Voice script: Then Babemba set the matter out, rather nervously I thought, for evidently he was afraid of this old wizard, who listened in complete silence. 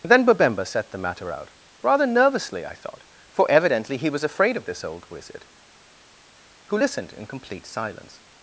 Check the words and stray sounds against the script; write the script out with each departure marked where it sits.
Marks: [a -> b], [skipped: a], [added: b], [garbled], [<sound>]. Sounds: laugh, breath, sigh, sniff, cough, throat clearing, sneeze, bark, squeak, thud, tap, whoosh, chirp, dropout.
Then Babemba set the matter out, rather nervously I thought, for evidently he was afraid of this old wizard, who listened in complete silence.